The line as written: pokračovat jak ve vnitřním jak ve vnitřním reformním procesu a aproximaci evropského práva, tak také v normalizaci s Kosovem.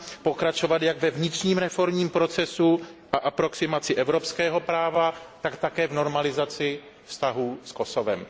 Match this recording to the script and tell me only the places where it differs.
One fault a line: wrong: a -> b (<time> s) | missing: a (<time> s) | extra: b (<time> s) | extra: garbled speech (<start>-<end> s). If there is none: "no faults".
missing: jak ve vnitřním (1.6 s)
extra: vztahů (7.0 s)